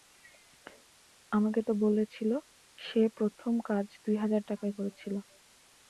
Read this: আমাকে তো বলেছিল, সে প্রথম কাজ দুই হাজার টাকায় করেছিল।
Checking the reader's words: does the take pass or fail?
pass